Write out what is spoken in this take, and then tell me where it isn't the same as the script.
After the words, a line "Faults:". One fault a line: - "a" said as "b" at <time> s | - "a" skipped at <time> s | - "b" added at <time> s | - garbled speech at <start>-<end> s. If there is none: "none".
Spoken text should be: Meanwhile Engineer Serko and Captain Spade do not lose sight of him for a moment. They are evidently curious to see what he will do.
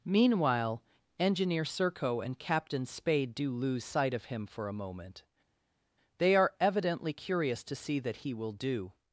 Meanwhile Engineer Serko and Captain Spade do lose sight of him for a moment. They are evidently curious to see that he will do.
Faults:
- "not" skipped at 3.5 s
- "what" said as "that" at 8.0 s